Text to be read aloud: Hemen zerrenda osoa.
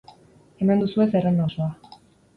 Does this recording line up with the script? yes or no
no